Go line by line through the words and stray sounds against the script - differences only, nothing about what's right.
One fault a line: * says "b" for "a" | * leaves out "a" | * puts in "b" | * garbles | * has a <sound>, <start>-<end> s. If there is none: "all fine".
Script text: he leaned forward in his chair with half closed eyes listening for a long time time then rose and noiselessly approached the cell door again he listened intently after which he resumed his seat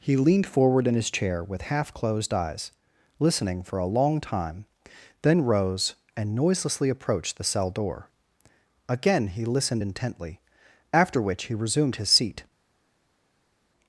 * leaves out "time"